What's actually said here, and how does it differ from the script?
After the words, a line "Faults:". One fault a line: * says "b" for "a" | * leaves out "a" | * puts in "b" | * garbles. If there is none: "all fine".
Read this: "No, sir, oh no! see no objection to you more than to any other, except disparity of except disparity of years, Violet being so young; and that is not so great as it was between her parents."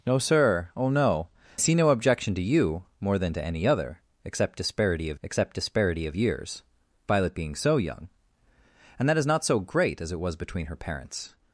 "No, sir, oh no! see no objection to you more than to any other, except disparity of except disparity of years, Violet being so young; and that is not so great as it was between her parents."
Faults:
all fine